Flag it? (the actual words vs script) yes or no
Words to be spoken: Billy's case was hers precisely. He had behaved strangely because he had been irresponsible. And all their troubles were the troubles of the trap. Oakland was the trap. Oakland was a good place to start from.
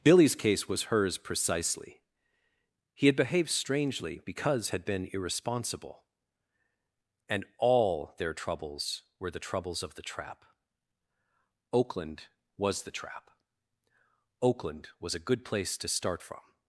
yes